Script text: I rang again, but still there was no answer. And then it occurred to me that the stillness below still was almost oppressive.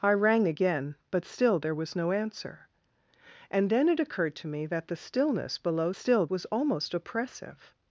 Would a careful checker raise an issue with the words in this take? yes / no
no